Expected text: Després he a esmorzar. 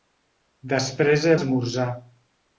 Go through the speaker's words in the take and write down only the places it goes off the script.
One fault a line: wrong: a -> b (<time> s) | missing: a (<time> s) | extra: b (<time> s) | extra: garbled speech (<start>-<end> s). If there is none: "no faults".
no faults